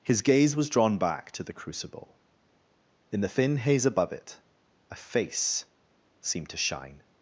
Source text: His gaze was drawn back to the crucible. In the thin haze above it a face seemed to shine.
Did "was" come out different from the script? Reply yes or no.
no